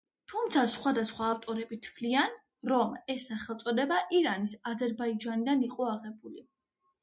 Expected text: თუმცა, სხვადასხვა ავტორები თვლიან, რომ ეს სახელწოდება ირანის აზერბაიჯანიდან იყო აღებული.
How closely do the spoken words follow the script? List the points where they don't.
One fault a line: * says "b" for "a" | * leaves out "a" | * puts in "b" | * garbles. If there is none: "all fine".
all fine